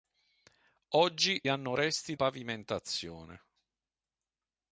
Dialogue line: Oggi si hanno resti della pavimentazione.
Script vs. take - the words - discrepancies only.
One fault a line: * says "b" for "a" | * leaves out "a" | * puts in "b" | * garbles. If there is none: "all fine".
* leaves out "si"
* leaves out "della"